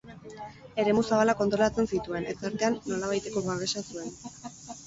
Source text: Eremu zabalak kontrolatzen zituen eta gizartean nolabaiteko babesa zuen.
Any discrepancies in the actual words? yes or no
yes